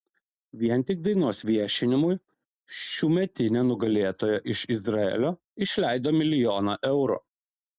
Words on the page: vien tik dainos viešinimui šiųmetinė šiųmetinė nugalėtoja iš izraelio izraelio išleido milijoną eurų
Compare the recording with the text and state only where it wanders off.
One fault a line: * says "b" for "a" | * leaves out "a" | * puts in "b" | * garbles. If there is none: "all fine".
* leaves out "šiųmetinė"
* leaves out "izraelio"